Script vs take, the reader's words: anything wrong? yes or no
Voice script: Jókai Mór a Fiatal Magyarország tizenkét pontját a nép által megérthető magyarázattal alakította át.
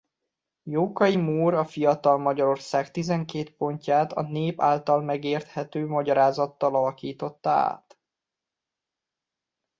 no